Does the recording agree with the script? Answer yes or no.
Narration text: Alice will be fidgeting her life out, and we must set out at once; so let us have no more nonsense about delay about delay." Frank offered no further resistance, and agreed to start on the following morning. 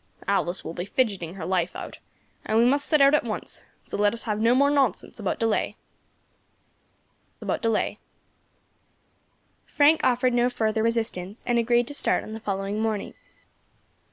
yes